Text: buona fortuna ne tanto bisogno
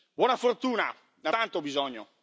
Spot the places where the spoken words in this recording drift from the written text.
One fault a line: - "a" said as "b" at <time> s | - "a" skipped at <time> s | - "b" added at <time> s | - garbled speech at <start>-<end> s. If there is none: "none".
none